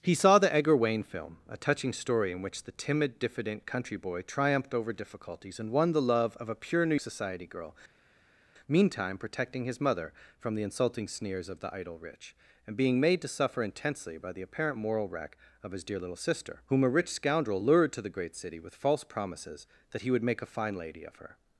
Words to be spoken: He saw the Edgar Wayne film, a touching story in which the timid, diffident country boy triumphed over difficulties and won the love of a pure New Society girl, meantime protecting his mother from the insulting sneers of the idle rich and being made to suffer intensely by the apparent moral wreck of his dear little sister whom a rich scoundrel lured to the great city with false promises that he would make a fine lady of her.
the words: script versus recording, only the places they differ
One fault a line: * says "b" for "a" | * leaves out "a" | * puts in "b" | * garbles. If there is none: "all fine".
all fine